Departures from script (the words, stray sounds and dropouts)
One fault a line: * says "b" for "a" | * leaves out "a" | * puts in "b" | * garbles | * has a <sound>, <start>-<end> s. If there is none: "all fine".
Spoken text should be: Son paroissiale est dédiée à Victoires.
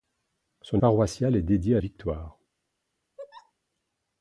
* has a laugh, 3.2-3.5 s